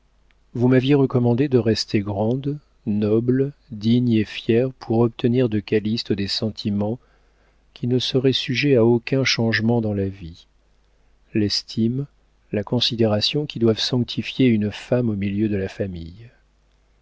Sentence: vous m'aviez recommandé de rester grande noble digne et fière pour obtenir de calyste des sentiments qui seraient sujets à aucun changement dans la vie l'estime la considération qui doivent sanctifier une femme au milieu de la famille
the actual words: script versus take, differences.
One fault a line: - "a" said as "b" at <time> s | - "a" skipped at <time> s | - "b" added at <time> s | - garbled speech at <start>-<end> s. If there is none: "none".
- "ne" added at 7.8 s